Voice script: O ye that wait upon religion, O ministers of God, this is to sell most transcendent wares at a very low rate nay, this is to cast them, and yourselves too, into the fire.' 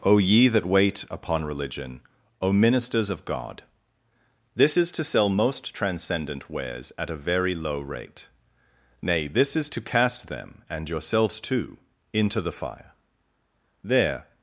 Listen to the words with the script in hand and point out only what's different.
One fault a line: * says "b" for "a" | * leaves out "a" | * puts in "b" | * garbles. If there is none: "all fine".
* puts in "There"